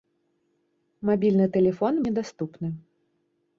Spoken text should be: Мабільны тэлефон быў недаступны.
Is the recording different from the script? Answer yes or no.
yes